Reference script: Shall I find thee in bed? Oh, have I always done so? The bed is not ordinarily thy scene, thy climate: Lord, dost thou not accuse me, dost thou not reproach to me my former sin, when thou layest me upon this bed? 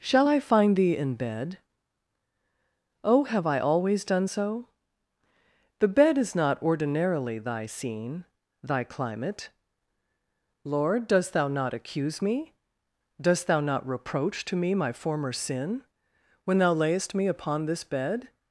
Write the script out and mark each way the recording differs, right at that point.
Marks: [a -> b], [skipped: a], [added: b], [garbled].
Shall I find thee in bed? Oh, have I always done so? The bed is not ordinarily thy scene, thy climate: Lord, dost thou not accuse me, dost thou not reproach to me my former sin, when thou layest me upon this bed?